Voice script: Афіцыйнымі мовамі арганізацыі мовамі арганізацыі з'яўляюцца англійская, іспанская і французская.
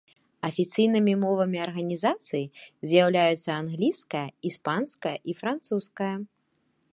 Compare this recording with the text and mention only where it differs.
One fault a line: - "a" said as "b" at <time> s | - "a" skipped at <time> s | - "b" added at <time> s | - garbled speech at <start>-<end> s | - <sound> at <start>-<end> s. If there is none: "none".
- "мовамі арганізацыі" skipped at 2.4 s